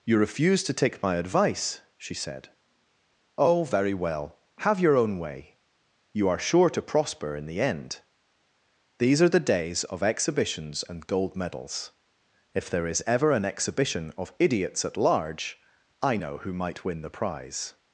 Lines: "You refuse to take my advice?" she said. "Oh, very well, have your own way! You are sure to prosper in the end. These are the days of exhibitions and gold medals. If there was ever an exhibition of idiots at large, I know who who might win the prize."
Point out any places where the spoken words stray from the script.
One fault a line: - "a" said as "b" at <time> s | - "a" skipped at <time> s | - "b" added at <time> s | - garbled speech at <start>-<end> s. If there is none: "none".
- "was" said as "is" at 12.9 s
- "who" skipped at 16.5 s